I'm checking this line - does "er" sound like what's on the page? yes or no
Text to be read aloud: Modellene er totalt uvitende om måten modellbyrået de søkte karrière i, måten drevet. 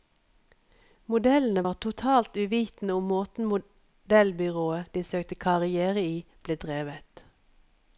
no